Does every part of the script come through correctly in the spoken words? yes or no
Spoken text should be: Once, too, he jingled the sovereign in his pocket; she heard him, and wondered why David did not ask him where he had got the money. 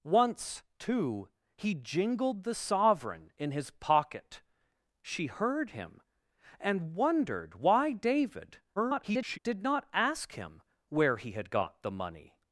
no